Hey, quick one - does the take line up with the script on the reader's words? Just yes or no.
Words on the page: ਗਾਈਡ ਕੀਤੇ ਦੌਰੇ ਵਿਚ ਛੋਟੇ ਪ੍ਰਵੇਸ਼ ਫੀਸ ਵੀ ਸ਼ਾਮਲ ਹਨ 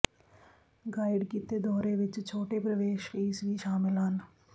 yes